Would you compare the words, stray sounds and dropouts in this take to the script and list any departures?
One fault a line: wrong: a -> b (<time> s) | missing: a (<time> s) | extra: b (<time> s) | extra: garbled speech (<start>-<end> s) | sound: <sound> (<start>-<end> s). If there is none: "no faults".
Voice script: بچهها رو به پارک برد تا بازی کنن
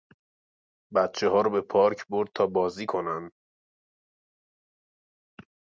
no faults